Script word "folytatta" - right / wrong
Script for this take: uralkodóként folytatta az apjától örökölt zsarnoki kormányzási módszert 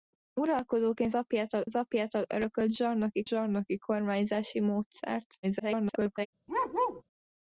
wrong